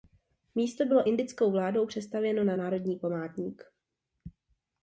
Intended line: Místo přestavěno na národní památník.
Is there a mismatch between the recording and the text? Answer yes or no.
yes